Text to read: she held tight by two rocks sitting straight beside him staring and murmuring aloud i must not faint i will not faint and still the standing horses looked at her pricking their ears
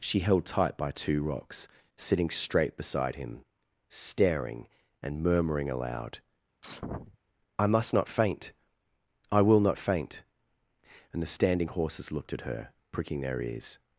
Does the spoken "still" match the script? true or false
false